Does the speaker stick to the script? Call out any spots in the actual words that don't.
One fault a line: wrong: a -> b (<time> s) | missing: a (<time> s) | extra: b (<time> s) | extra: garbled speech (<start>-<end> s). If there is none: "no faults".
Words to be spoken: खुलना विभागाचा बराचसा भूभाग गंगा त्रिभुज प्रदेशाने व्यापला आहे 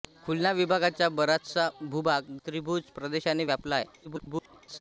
missing: गंगा (2.4 s)
extra: garbled speech (4.0-4.8 s)